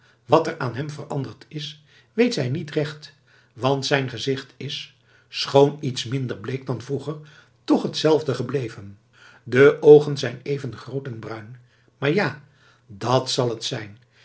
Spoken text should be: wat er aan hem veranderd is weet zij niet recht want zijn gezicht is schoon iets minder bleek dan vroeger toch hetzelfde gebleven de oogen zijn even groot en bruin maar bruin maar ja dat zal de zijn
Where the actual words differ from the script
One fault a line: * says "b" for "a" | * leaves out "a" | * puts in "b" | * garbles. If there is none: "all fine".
* leaves out "bruin maar"
* says "het" for "de"